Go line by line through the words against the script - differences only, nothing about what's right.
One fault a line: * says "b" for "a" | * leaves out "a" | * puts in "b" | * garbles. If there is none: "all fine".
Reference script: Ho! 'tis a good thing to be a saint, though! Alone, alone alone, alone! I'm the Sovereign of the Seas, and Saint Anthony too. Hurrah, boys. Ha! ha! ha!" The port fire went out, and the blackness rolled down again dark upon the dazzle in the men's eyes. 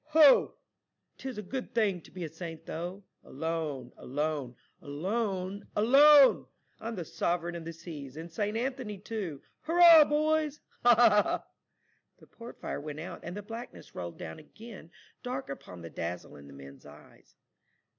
all fine